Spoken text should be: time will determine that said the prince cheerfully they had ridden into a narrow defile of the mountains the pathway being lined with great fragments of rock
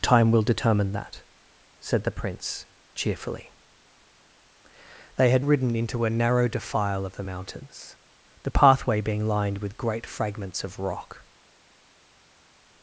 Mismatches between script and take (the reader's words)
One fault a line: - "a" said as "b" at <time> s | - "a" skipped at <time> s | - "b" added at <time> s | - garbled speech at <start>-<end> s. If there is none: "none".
none